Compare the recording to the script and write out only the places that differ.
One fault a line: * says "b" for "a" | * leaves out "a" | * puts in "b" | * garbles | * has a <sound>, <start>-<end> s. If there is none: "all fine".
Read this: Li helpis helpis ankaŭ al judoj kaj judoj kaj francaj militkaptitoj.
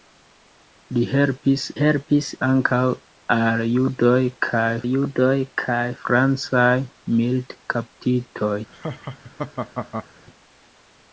* has a laugh, 8.7-10.1 s